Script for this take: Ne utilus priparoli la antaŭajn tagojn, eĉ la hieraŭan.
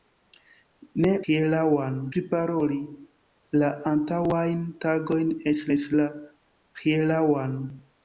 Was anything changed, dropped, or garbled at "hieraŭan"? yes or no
no